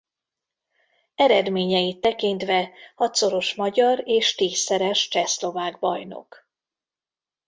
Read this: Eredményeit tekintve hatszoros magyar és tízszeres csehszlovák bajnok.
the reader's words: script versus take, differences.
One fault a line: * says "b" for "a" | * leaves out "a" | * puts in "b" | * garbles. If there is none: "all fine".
all fine